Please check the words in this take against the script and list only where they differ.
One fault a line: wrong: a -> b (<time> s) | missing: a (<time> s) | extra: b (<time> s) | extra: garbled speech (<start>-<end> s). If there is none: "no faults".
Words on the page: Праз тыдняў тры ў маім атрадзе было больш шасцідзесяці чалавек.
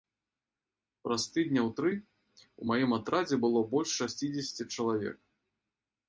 no faults